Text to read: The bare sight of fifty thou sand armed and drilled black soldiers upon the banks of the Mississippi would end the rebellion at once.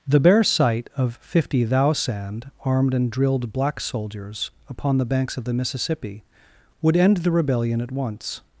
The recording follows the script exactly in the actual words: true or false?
true